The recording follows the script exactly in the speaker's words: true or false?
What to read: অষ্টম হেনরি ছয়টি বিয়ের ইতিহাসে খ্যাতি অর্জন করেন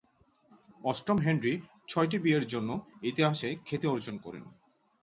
false